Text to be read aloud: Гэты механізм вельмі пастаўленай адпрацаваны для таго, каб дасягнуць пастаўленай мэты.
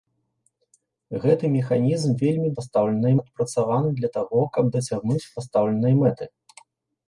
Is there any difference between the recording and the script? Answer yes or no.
no